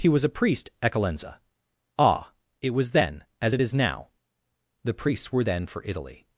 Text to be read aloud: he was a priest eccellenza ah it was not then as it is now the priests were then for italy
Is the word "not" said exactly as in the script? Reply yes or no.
no